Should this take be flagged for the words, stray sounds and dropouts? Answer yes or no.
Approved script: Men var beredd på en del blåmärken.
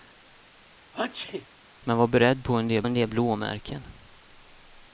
yes